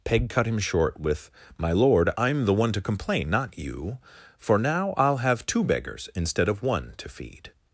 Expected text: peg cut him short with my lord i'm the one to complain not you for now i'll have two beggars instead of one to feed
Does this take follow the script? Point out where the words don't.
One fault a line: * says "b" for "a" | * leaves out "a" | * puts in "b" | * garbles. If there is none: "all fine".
all fine